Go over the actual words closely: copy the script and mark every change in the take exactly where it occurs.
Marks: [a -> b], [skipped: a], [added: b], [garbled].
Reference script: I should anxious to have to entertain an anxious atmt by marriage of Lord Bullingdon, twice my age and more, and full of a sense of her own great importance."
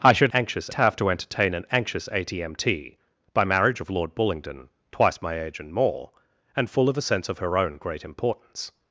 I should anxious to have to entertain an anxious atmt by marriage of Lord Bullingdon, twice my age and more, and full of a sense of her own great importance."